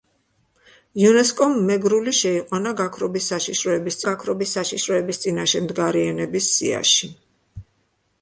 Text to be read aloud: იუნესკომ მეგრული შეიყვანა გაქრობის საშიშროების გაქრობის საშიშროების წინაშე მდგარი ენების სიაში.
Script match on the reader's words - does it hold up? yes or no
yes